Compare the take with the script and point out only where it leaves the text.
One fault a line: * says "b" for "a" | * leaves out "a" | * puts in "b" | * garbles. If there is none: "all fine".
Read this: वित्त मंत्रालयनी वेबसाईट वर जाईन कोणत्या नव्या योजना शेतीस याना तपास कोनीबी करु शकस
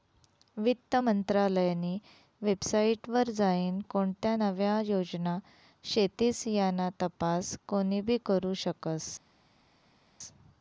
all fine